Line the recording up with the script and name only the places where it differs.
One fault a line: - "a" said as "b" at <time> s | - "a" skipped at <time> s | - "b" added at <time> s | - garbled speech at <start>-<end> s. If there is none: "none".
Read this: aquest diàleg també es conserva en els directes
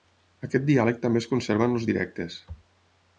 none